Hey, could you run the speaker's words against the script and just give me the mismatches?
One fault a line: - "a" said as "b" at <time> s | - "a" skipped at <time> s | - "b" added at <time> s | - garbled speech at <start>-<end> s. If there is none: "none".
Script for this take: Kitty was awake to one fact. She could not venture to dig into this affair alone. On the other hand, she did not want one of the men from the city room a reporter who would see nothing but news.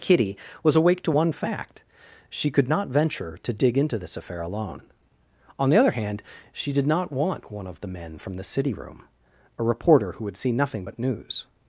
none